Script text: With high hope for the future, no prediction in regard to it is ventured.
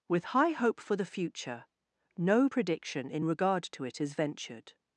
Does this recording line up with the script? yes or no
yes